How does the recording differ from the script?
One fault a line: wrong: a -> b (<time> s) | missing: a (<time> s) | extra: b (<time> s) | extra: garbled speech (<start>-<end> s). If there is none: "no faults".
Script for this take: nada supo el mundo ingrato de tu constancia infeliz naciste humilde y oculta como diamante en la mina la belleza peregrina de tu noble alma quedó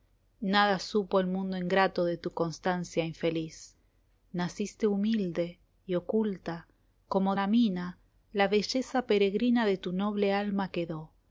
missing: diamante en (7.3 s)